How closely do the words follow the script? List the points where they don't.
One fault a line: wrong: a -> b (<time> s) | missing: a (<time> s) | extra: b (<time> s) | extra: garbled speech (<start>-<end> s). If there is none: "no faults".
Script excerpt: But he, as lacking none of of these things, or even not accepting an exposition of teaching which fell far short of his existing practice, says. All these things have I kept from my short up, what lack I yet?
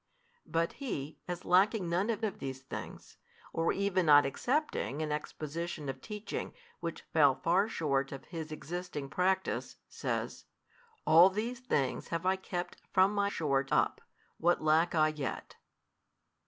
no faults